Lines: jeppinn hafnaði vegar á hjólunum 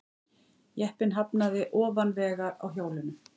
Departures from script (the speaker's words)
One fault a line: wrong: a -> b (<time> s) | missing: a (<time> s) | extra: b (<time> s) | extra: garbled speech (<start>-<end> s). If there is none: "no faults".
extra: ofan (1.8 s)